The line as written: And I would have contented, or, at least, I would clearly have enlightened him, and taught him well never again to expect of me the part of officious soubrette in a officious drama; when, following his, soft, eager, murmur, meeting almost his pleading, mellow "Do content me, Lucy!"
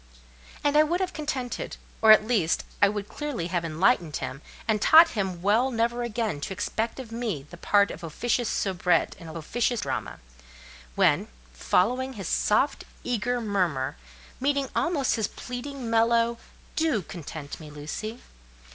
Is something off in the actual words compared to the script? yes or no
no